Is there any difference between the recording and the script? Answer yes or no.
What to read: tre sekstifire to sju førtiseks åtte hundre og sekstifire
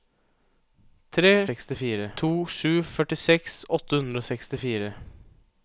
no